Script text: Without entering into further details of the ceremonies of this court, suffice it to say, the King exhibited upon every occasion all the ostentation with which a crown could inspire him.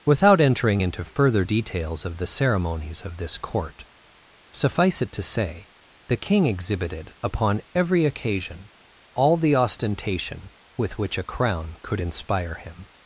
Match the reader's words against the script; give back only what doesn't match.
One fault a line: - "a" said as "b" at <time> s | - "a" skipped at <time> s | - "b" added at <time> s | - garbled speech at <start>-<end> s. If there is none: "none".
none